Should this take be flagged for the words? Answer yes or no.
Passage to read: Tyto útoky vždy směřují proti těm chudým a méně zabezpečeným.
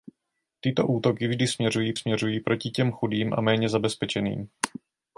yes